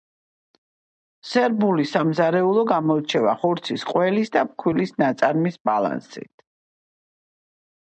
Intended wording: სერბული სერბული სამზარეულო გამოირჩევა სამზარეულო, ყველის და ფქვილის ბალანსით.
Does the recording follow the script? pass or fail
fail